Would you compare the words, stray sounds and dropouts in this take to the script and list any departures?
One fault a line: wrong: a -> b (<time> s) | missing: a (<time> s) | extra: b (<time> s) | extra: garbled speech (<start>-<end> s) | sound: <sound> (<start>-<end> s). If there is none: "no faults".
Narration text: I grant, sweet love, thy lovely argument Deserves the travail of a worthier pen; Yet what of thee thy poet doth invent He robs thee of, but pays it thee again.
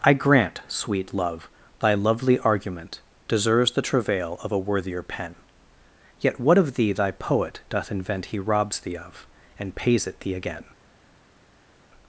wrong: but -> and (9.6 s)